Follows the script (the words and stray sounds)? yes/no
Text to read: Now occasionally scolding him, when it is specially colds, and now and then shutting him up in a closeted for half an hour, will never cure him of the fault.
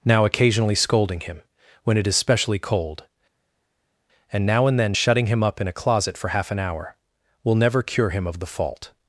no